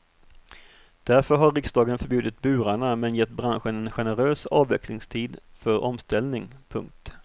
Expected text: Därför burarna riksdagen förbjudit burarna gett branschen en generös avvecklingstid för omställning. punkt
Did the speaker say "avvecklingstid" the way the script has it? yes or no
yes